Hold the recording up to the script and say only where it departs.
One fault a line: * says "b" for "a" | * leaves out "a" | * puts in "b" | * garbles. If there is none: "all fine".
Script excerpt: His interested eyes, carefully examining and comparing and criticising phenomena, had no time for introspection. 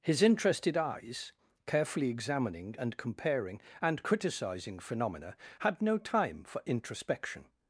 all fine